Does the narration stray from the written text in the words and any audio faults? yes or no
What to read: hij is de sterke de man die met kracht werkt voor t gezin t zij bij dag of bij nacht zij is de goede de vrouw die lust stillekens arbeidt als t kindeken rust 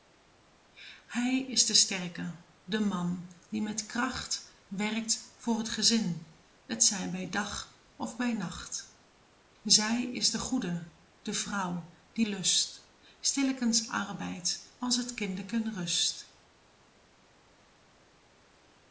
no